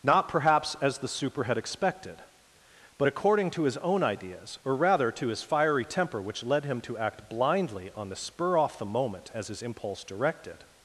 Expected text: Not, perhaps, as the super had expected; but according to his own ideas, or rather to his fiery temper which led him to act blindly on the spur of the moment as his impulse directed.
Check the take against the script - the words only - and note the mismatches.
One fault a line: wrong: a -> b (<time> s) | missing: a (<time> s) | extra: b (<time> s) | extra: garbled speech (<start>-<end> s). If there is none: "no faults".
wrong: of -> off (8.6 s)